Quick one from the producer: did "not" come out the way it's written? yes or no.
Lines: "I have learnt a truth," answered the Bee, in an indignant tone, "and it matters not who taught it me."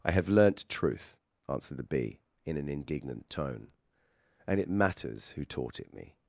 no